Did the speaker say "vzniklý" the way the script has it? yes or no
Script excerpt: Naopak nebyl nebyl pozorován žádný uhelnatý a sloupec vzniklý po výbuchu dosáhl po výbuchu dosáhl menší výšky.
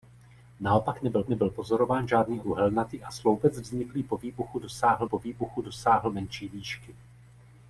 yes